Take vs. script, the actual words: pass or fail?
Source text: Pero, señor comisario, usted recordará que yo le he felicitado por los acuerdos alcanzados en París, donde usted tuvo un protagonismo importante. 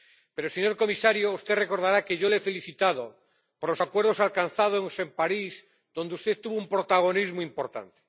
pass